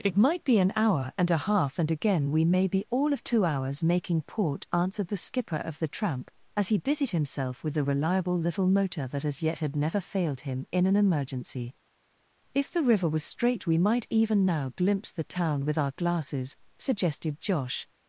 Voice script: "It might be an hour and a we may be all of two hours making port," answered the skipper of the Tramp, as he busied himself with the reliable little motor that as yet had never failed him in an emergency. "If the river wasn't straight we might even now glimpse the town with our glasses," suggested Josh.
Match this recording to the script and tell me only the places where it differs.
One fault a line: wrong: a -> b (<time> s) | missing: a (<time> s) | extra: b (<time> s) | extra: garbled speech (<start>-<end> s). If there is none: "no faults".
extra: half and again (1.4 s)
wrong: wasn't -> was (13.1 s)